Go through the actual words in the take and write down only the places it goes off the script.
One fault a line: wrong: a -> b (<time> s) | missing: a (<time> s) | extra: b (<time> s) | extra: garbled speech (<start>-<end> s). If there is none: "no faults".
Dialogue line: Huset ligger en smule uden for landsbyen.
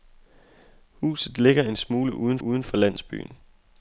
extra: uden (2.4 s)